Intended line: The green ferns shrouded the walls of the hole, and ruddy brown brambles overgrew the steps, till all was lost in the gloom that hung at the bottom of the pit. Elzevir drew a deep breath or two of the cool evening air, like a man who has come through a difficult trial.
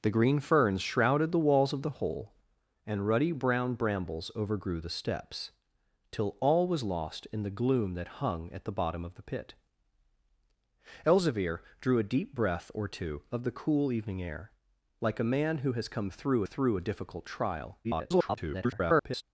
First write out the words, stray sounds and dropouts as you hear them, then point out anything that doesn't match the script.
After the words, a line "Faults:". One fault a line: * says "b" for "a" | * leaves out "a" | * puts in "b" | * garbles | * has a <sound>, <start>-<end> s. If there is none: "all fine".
The green ferns shrouded the walls of the hole, and ruddy brown brambles overgrew the steps, till all was lost in the gloom that hung at the bottom of the pit. Elzevir drew a deep breath or two of the cool evening air, like a man who has come through through a difficult trial. [garbled]
Faults:
* puts in "through"
* garbles